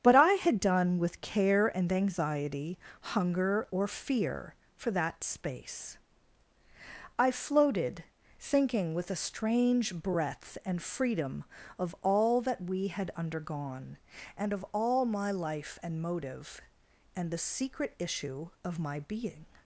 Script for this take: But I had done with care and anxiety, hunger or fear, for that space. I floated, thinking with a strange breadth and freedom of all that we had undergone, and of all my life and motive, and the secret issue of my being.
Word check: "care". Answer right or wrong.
right